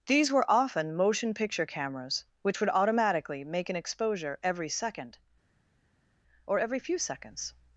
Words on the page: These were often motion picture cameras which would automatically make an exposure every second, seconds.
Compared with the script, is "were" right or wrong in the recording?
right